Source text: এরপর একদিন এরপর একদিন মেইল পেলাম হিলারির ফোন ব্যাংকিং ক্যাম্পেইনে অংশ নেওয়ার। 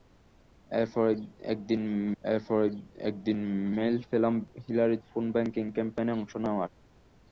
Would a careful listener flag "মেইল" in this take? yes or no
no